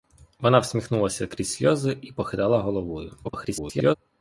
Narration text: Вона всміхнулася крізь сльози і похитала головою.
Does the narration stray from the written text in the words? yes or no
yes